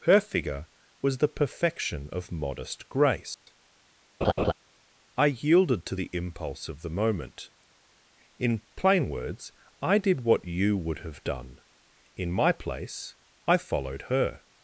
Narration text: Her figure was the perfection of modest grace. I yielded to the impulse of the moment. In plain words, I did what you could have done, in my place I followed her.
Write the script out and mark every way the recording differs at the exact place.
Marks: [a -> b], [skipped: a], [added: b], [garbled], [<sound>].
Her figure was the perfection of modest grace. [dropout] [laugh] I yielded to the impulse of the moment. In plain words, I did what you [could -> would] have done, in my place I followed her.